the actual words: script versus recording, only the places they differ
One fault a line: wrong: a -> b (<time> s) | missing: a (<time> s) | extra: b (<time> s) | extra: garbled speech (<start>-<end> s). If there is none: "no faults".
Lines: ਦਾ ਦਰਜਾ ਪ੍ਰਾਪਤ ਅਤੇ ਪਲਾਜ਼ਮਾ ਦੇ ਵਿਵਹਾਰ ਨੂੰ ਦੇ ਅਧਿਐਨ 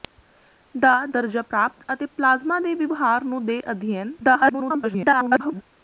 extra: garbled speech (4.2-5.6 s)